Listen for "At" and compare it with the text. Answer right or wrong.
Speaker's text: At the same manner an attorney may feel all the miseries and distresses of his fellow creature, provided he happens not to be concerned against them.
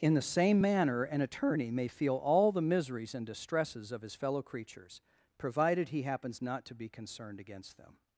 wrong